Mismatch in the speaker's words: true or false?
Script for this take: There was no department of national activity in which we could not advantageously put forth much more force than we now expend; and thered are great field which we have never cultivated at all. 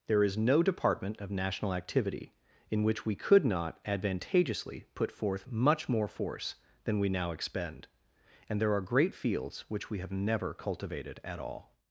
true